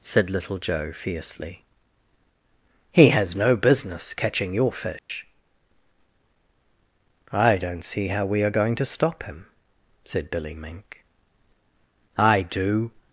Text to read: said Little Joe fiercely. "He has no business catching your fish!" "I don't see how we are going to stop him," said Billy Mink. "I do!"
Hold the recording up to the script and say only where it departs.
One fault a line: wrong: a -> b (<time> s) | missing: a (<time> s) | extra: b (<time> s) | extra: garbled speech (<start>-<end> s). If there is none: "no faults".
no faults